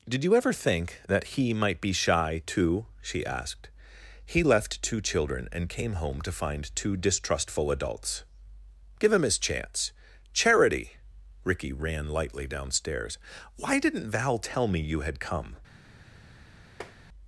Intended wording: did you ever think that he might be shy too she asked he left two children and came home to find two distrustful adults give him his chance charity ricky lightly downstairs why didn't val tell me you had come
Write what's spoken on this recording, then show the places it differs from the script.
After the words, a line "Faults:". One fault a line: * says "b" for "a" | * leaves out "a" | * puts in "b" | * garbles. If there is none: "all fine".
did you ever think that he might be shy too she asked he left two children and came home to find two distrustful adults give him his chance charity ricky ran lightly downstairs why didn't val tell me you had come
Faults:
* puts in "ran"